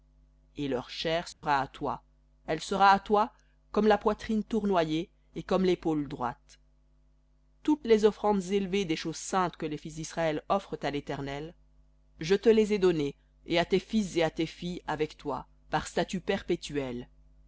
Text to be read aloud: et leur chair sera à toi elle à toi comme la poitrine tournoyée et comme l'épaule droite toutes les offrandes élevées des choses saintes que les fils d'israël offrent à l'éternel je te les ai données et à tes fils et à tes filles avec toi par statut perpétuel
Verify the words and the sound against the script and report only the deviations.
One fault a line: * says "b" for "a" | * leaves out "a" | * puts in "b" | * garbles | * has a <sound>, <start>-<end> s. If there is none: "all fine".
* has a dropout, 1.3-1.4 s
* puts in "sera"